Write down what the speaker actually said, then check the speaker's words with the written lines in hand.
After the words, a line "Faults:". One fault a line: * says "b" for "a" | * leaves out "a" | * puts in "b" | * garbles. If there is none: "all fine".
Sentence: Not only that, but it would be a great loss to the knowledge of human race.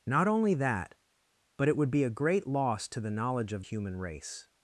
Not only that, but it would be a great loss to the knowledge of human race.
Faults:
all fine